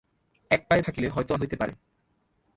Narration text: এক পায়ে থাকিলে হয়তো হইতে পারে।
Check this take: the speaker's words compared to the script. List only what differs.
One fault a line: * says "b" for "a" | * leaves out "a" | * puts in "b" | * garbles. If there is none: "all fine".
all fine